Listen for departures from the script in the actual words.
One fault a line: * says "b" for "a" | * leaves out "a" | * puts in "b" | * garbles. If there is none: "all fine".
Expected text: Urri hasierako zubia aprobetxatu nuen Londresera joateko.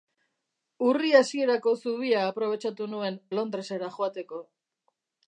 all fine